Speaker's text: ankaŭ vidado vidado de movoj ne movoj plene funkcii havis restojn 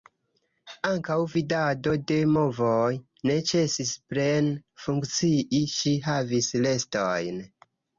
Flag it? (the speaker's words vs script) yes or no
yes